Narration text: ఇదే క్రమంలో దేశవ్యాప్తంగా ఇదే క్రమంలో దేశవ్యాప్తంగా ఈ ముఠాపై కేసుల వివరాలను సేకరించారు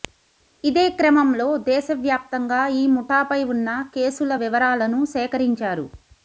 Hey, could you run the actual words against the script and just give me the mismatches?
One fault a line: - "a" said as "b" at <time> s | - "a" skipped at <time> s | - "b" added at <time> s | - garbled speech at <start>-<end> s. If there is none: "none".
- "ఇదే క్రమంలో దేశవ్యాప్తంగా" skipped at 2.6 s
- "ఉన్న" added at 3.5 s